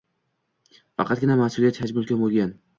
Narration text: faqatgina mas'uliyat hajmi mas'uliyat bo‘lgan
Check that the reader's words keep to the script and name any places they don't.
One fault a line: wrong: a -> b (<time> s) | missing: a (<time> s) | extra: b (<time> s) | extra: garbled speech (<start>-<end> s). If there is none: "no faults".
wrong: mas'uliyat -> ulkan (2.0 s)